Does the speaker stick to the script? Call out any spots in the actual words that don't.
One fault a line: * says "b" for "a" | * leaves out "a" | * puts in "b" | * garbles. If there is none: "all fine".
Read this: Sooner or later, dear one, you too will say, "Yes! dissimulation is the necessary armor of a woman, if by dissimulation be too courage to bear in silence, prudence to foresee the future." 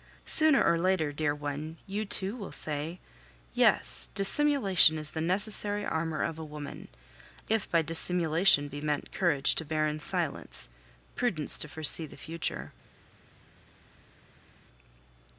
* says "meant" for "too"